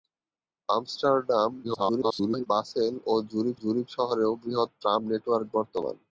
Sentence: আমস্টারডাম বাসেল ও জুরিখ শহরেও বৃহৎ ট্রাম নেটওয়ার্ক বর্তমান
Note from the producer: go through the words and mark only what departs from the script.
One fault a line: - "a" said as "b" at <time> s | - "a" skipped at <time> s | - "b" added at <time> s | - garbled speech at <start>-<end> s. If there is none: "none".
- garbled speech at 1.6-2.5 s
- "জুরিখ" added at 3.6 s